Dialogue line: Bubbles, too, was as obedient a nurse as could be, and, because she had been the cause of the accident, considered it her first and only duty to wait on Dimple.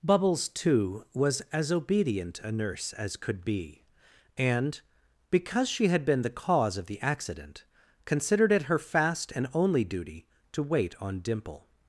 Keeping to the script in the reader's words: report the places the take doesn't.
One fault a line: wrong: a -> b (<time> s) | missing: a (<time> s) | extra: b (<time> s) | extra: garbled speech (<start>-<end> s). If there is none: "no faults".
wrong: first -> fast (8.8 s)